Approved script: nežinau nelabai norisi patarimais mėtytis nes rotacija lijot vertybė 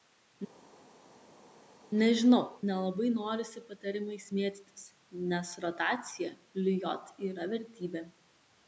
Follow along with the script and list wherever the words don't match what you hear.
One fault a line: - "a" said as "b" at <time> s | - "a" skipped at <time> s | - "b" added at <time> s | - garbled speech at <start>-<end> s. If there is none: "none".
- "yra" added at 7.3 s